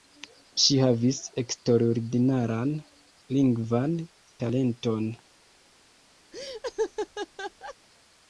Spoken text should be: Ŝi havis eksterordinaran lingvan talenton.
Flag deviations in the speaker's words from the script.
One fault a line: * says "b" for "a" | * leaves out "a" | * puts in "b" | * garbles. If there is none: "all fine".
all fine